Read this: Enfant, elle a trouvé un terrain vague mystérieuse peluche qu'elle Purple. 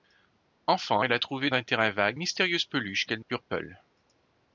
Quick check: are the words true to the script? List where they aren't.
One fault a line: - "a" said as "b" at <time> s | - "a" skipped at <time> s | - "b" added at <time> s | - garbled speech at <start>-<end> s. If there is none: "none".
none